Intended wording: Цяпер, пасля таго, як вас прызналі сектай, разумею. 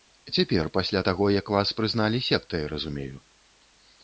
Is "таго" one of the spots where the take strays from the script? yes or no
no